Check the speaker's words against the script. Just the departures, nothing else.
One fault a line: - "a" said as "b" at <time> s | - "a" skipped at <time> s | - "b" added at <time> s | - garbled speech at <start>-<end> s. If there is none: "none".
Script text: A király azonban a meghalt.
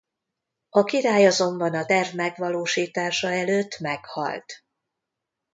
- "terv megvalósítása előtt" added at 1.8 s